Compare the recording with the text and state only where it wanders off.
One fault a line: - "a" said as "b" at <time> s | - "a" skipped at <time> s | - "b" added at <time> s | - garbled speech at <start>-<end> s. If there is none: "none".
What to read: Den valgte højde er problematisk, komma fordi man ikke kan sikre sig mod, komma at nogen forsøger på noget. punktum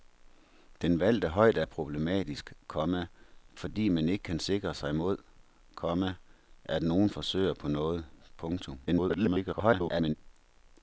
- garbled speech at 8.9-10.1 s